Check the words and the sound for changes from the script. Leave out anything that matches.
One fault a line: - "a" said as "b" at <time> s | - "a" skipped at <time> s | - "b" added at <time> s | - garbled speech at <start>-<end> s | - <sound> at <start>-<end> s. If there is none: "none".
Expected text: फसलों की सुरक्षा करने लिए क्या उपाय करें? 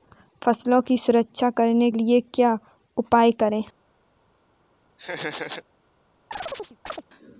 - laugh at 5.0-5.6 s
- chirp at 6.3-7.0 s